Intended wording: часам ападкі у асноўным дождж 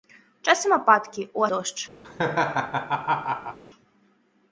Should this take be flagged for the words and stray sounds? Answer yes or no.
yes